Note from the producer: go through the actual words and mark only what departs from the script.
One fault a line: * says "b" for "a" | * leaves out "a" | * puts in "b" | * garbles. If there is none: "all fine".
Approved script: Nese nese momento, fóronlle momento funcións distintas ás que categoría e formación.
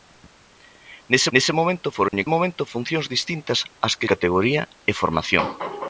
all fine